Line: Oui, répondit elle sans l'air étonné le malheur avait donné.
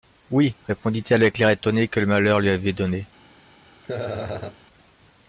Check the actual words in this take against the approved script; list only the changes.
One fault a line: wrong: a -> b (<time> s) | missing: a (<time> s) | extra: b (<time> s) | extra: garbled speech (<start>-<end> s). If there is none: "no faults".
wrong: sans -> avec (1.2 s)
extra: que (1.9 s)
extra: lui (2.4 s)